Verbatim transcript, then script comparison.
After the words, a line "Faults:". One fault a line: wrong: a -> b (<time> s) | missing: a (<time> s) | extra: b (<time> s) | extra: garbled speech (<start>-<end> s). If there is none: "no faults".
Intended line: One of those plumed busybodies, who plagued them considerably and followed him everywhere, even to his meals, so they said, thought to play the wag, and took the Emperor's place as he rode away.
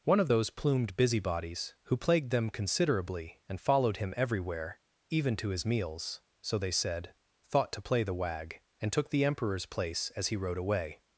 One of those plumed busybodies, who plagued them considerably and followed him everywhere, even to his meals, so they said, thought to play the wag, and took the Emperor's place as he rode away.
Faults:
no faults